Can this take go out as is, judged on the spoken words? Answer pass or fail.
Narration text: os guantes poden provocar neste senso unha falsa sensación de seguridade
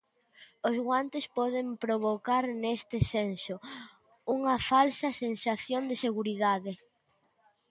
pass